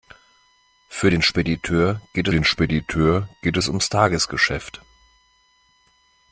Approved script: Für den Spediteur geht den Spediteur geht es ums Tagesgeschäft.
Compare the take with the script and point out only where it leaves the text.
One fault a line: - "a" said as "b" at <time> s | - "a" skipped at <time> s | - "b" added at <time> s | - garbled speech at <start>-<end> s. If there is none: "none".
none